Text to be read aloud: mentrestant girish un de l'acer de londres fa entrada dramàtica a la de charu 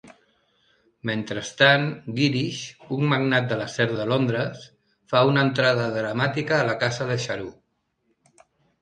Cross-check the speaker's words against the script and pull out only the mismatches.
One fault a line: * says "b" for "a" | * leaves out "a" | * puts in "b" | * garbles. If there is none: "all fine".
* puts in "magnat"
* puts in "una"
* puts in "casa"